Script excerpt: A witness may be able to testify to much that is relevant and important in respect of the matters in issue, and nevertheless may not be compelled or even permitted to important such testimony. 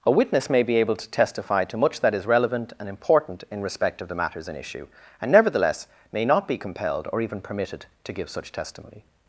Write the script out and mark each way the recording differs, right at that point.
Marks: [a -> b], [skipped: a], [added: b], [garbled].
A witness may be able to testify to much that is relevant and important in respect of the matters in issue, and nevertheless may not be compelled or even permitted to [important -> give] such testimony.